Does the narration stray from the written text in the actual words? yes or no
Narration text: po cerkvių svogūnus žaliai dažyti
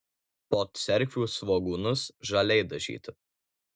no